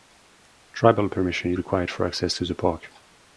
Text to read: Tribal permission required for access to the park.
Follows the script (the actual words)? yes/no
yes